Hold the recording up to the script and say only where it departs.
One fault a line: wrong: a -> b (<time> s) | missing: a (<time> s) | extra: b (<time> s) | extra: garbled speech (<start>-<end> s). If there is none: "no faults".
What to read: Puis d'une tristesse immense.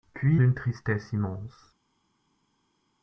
no faults